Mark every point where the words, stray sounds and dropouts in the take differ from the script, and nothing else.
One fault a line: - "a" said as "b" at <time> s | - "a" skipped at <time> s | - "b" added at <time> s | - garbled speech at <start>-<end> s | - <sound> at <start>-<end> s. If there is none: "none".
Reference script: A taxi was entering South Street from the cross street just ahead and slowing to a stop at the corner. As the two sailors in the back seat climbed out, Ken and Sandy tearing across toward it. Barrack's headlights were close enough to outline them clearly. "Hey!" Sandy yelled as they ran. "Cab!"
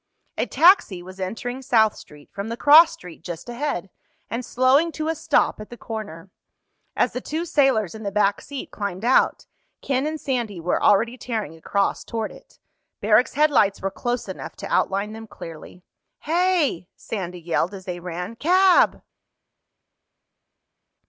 - "were already" added at 10.6 s